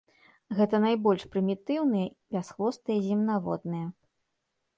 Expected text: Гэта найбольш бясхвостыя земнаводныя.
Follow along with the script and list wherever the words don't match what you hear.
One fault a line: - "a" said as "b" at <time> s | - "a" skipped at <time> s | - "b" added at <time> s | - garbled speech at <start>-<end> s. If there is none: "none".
- "прымітыўныя" added at 1.4 s